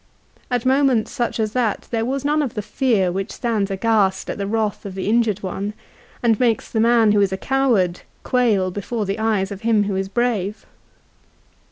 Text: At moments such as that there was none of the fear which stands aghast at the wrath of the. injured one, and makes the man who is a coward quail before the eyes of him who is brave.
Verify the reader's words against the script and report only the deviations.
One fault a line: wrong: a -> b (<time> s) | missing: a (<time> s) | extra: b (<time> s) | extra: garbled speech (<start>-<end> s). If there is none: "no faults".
no faults